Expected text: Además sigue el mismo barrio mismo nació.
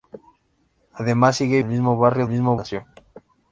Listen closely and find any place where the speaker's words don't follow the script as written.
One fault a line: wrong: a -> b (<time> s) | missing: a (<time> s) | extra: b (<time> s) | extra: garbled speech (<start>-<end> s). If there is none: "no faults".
no faults